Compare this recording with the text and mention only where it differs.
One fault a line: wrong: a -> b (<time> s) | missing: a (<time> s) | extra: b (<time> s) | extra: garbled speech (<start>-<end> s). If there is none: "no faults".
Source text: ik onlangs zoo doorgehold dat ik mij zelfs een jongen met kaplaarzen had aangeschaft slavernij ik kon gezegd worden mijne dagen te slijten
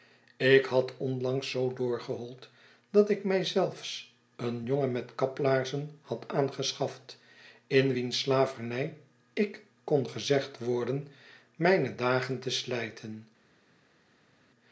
extra: had (0.7 s)
extra: in wiens (7.7 s)